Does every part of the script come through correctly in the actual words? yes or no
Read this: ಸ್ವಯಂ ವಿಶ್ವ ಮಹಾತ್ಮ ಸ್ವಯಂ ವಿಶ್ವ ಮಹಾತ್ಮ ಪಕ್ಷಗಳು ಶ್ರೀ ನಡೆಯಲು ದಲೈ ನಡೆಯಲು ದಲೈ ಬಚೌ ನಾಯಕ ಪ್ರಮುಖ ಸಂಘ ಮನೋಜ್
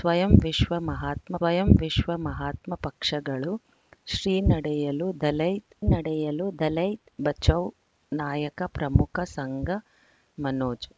yes